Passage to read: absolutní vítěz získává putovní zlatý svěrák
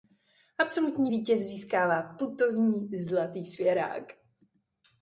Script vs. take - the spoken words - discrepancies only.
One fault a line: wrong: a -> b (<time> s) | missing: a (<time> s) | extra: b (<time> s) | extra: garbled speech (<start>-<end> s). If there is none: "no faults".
no faults